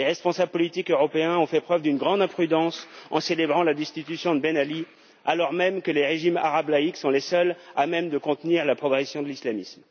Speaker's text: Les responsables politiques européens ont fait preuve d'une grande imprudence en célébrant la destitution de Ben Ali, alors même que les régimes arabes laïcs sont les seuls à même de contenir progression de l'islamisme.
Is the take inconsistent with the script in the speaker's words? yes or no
yes